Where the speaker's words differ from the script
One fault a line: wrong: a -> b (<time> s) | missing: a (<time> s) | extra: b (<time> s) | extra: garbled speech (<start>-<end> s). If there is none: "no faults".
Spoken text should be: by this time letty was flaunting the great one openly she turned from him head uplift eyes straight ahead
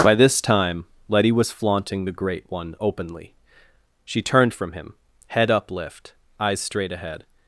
no faults